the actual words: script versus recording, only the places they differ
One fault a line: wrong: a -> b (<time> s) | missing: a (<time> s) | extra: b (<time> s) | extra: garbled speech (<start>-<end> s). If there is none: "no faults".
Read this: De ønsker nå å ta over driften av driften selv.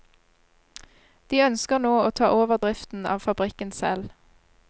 wrong: driften -> fabrikken (3.3 s)